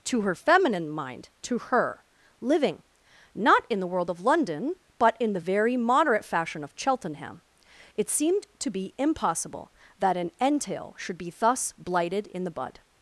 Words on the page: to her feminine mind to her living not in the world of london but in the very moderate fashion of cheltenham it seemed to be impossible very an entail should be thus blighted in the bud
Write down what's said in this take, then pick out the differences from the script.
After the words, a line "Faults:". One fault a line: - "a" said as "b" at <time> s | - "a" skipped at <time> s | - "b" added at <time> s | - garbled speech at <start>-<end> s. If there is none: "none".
to her feminine mind to her living not in the world of london but in the very moderate fashion of cheltenham it seemed to be impossible that an entail should be thus blighted in the bud
Faults:
- "very" said as "that" at 10.0 s